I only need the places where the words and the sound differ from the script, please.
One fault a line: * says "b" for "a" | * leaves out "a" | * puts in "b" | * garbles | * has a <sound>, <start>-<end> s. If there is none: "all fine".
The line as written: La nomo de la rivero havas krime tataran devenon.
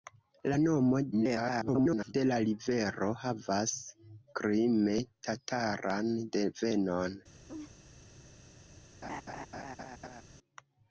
* garbles
* has a laugh, 7.5-7.7 s
* has a laugh, 9.0-10.2 s